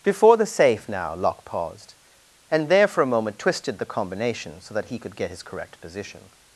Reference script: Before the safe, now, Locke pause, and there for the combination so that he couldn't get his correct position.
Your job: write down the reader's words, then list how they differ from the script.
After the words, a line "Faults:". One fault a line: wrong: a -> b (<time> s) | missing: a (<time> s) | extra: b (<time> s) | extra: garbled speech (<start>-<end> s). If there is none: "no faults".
Before the safe, now, Locke paused, and there for a moment twisted the combination so that he could get his correct position.
Faults:
wrong: pause -> paused (1.4 s)
extra: a moment twisted (3.0 s)
wrong: couldn't -> could (5.0 s)